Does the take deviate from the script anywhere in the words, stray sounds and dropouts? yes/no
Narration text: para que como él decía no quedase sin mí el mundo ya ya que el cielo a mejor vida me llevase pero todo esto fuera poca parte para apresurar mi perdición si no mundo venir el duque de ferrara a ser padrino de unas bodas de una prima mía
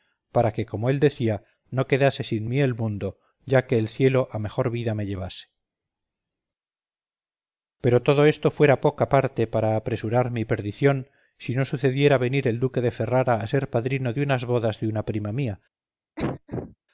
yes